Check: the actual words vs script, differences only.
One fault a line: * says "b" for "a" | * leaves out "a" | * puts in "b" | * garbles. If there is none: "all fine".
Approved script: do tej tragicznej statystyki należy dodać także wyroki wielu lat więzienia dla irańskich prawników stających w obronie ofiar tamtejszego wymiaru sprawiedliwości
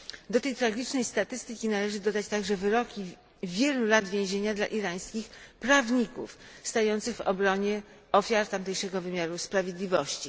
all fine